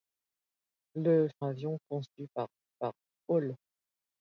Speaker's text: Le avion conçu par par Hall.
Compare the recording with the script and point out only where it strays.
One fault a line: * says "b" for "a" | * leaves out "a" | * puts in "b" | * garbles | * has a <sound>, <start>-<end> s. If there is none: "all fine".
all fine